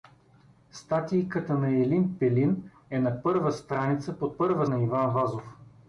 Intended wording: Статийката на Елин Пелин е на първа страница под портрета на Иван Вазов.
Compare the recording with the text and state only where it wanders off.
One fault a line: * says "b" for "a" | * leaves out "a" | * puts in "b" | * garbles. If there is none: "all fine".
* says "първа" for "портрета"